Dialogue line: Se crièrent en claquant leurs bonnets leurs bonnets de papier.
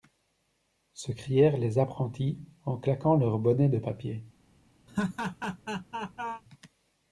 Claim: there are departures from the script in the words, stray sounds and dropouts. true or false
true